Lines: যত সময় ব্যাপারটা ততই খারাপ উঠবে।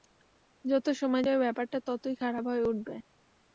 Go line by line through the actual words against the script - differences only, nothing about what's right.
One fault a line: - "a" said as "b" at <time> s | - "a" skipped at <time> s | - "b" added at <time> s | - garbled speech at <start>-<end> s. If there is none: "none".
- "যাবে" added at 1.2 s
- "হয়ে" added at 2.5 s